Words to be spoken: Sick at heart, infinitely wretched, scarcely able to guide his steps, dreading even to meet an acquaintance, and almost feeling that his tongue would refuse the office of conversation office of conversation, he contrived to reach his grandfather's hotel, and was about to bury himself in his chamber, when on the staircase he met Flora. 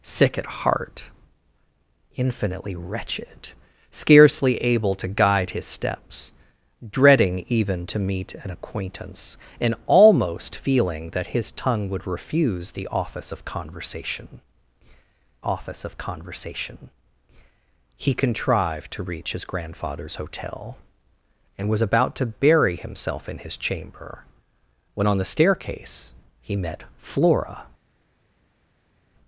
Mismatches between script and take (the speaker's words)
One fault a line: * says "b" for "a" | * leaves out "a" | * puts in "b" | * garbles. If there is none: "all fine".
all fine